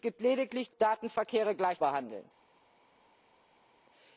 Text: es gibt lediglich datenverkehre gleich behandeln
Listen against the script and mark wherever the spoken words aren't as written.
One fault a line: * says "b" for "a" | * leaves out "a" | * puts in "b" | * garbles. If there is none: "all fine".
all fine